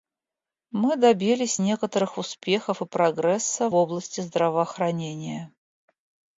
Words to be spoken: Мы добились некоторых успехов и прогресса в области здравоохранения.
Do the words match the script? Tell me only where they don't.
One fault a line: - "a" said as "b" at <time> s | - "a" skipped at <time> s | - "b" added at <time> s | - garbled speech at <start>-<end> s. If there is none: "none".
- "в" skipped at 3.7 s